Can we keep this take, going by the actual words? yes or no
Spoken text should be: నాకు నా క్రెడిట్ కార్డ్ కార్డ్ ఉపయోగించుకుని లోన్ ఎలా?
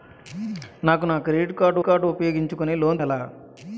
yes